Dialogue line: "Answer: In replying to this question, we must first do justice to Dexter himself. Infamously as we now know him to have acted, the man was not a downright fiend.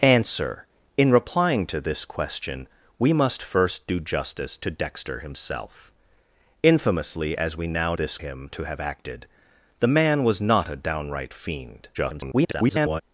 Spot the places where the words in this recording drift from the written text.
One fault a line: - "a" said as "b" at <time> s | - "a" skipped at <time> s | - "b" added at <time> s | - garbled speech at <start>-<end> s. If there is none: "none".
- "know" said as "this" at 7.9 s
- garbled speech at 11.9-13.0 s